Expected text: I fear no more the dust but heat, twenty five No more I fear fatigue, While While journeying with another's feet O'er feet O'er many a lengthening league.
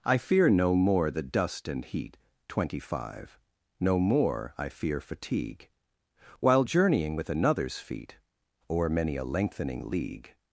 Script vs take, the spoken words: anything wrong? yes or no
yes